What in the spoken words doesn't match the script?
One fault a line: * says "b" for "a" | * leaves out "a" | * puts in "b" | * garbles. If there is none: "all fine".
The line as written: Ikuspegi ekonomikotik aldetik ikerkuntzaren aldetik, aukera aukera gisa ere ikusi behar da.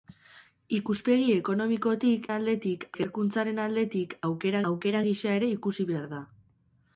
all fine